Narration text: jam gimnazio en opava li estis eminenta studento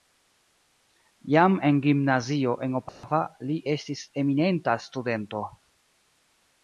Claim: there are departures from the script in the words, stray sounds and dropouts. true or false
true